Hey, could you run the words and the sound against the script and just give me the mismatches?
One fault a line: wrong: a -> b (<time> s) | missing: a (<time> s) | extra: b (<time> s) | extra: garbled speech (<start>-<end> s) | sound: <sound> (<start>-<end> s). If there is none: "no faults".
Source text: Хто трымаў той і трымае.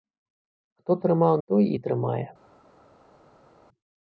no faults